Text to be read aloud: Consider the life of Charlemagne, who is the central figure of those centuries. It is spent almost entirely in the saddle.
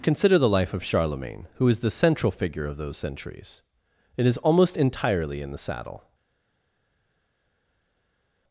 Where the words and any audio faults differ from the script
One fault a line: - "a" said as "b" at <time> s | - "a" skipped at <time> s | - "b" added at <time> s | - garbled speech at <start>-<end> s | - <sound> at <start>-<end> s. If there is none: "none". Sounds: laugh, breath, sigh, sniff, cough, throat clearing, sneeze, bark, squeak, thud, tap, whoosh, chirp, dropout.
- "spent" skipped at 4.4 s